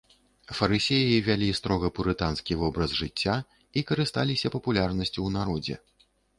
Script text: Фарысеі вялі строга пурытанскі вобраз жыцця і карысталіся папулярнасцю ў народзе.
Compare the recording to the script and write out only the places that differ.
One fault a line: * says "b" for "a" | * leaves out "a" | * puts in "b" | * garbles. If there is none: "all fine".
all fine